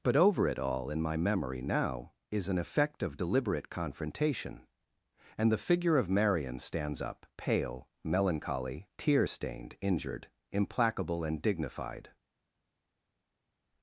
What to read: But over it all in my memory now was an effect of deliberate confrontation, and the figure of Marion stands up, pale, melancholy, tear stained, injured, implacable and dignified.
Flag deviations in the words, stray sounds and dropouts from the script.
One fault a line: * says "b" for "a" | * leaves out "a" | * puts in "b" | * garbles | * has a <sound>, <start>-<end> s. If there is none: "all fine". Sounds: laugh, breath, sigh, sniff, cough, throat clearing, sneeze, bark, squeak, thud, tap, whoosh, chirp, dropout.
* says "is" for "was"